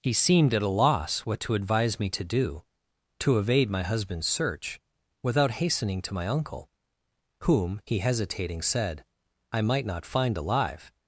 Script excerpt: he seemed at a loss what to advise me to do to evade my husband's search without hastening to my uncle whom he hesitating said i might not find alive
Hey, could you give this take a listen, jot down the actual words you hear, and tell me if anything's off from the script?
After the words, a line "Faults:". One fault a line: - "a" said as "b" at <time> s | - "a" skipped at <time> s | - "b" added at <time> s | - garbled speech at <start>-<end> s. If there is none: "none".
he seemed at a loss what to advise me to do to evade my husband's search without hastening to my uncle whom he hesitating said i might not find alive
Faults:
none